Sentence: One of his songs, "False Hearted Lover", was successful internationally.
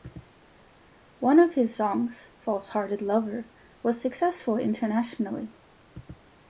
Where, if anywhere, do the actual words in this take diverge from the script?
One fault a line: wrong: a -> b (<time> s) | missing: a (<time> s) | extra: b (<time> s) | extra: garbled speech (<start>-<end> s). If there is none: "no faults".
no faults